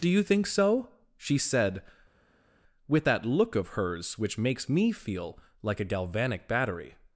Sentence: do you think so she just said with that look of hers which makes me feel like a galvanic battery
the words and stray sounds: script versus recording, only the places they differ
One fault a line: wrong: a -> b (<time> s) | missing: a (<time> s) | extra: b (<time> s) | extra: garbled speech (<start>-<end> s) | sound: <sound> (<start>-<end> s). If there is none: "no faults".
missing: just (1.4 s)